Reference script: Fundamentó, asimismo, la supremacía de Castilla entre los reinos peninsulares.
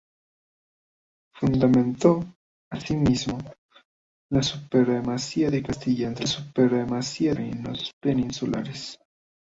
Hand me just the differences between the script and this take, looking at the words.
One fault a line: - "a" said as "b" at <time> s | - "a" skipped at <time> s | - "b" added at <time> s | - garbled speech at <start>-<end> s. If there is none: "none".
- "los" said as "supremacía" at 6.2 s